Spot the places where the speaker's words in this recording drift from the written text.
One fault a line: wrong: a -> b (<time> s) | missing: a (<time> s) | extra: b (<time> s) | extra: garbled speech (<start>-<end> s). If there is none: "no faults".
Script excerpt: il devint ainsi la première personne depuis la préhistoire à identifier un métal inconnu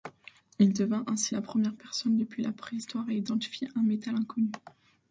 no faults